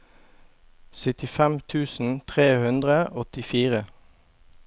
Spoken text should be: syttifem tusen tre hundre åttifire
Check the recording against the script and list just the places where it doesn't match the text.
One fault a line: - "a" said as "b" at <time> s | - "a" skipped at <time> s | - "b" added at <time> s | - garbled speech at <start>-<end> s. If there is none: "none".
none